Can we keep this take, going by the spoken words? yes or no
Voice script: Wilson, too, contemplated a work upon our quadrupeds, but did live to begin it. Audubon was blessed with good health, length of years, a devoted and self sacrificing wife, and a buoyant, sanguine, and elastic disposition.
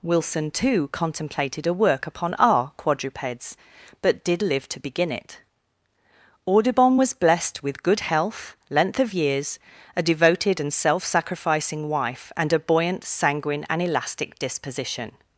yes